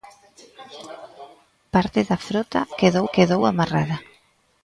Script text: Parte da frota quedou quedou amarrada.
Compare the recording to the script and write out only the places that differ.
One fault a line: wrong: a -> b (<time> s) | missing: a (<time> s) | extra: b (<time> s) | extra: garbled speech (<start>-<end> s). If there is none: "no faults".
no faults